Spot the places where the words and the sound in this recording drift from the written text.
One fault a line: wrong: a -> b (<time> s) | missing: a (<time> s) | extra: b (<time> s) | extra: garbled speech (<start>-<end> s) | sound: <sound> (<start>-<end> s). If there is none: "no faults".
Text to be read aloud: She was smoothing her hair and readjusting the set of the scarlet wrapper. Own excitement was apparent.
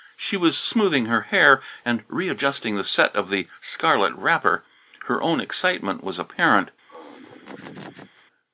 extra: Her (5.0 s)
sound: laugh (6.9-8.2 s)